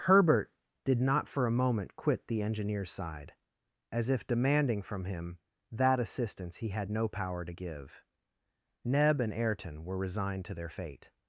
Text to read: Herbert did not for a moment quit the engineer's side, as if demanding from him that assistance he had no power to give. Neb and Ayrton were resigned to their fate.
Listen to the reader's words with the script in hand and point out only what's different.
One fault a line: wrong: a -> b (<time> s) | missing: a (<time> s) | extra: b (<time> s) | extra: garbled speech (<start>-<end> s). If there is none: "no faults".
no faults